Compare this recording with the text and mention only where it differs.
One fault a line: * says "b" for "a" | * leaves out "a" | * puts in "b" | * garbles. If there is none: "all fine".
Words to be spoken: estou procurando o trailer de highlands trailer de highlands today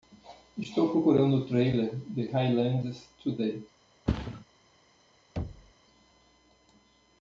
* leaves out "trailer de highlands"